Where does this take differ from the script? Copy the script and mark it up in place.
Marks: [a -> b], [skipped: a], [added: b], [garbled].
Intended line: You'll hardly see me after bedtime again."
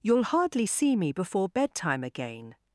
You'll hardly see me [after -> before] bedtime again."